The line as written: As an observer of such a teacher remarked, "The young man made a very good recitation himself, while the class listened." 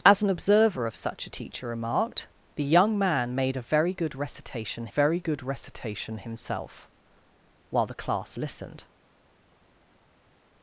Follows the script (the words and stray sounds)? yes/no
no